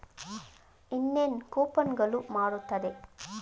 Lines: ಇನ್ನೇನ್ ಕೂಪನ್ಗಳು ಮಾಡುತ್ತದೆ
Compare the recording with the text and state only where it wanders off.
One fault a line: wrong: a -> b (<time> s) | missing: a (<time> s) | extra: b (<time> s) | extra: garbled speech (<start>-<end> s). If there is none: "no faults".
no faults